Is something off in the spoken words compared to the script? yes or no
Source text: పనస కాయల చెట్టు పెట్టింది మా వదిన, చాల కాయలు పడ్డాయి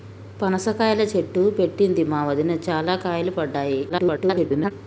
yes